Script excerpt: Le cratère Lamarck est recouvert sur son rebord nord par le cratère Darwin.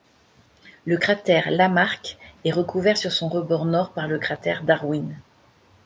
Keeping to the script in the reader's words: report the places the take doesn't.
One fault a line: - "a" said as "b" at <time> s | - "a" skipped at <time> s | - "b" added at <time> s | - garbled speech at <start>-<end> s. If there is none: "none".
none